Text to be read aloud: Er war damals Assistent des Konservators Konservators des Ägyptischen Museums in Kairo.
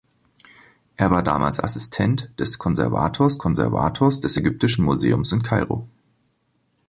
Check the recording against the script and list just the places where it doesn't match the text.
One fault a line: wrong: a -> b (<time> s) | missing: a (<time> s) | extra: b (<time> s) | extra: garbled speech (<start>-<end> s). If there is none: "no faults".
no faults